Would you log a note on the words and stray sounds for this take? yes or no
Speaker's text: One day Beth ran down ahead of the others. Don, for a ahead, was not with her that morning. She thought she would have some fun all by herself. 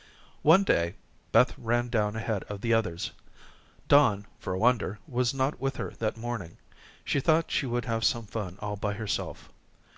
yes